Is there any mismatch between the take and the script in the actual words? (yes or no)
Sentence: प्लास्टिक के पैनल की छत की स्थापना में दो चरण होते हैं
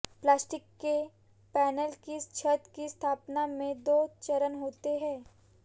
no